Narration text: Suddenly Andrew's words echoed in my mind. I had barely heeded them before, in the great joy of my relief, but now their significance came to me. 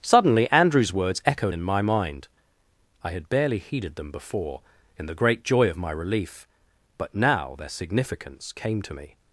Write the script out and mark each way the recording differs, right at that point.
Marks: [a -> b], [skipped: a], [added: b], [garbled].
Suddenly Andrew's words echoed in my mind. I had barely heeded them before, in the great joy of my relief, but now their significance came to me.